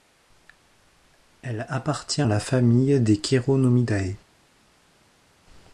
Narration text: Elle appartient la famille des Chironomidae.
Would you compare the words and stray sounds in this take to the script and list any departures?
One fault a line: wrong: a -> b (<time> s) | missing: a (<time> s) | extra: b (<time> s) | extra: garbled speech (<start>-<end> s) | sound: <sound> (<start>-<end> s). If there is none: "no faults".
no faults